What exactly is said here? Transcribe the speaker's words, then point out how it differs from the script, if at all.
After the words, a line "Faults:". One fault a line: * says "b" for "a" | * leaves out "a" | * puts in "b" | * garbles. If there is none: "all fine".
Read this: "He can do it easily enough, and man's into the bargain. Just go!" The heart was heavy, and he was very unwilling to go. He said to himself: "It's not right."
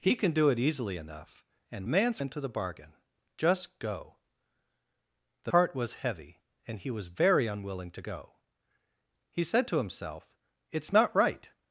"He can do it easily enough, and man's into the bargain. Just go!" The heart was heavy, and he was very unwilling to go. He said to himself: "It's not right."
Faults:
all fine